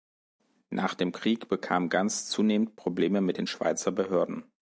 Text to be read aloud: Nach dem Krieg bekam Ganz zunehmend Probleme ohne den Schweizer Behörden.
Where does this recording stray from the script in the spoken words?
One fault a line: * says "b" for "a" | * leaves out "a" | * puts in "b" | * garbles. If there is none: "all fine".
* says "mit" for "ohne"